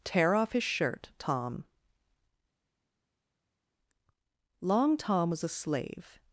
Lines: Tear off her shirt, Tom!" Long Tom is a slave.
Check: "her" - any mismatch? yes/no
yes